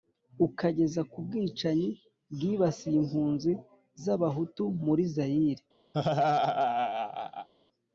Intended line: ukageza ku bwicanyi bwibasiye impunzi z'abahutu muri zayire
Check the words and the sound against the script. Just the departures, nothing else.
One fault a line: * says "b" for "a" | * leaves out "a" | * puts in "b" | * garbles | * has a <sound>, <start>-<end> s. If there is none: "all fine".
* has a laugh, 5.9-7.5 s